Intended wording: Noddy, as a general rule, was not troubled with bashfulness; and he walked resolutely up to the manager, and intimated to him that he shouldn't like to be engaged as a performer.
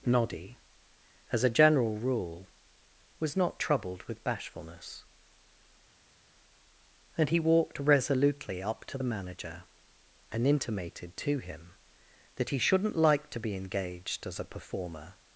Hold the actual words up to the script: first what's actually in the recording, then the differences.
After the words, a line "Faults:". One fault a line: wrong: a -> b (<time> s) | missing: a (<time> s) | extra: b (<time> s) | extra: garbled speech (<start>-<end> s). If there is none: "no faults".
Noddy, as a general rule, was not troubled with bashfulness; and he walked resolutely up to the manager, and intimated to him that he shouldn't like to be engaged as a performer.
Faults:
no faults